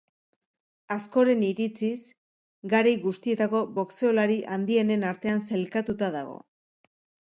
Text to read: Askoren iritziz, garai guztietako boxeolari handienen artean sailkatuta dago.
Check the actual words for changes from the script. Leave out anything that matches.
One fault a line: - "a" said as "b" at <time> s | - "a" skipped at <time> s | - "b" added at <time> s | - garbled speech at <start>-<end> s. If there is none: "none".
none